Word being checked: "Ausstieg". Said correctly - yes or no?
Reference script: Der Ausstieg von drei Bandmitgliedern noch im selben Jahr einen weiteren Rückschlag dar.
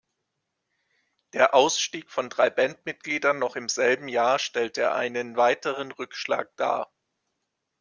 yes